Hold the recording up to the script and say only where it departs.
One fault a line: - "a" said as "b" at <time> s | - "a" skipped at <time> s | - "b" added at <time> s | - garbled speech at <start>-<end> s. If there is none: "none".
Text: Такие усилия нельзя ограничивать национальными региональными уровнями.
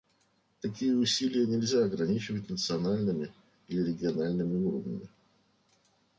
- "или" added at 3.7 s